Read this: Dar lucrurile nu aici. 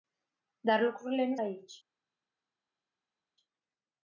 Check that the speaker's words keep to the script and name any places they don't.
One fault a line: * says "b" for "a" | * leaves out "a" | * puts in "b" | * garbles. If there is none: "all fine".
all fine